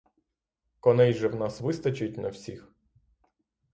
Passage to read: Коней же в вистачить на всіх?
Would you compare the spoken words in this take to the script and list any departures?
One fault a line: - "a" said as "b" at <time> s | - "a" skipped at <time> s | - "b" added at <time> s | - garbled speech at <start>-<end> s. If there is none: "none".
- "нас" added at 1.4 s